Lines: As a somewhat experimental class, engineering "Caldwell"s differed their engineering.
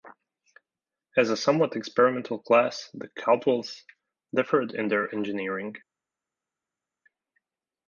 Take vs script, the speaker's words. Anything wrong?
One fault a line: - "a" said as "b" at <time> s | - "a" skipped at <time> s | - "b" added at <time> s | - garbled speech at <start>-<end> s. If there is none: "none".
- "engineering" said as "the" at 2.9 s
- "in" added at 4.7 s